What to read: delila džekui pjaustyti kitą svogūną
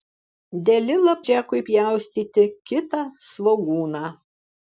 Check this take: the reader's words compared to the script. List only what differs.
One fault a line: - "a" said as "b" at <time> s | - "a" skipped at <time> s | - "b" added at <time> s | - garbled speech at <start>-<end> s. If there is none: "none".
none